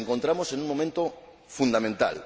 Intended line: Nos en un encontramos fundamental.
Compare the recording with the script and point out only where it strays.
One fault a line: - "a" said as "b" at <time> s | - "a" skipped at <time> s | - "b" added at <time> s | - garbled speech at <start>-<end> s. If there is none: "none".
- "encontramos" added at 0.1 s
- "encontramos" said as "momento" at 0.7 s